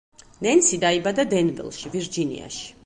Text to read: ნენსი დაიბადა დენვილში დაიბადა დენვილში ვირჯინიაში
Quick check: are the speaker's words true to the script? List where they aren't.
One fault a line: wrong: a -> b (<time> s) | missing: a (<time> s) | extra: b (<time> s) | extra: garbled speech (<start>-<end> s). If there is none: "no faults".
missing: დაიბადა დენვილში (2.0 s)